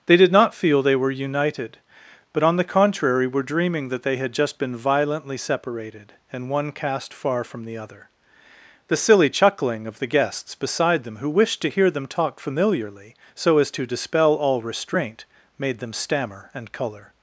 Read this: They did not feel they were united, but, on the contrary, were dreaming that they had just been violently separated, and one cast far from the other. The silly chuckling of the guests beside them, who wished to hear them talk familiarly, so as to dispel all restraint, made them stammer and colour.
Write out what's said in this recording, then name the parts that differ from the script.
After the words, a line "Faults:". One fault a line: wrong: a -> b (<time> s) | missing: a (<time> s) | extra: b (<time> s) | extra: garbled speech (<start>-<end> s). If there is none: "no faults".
They did not feel they were united, but, on the contrary, were dreaming that they had just been violently separated, and one cast far from the other. The silly chuckling of the guests beside them, who wished to hear them talk familiarly, so as to dispel all restraint, made them stammer and colour.
Faults:
no faults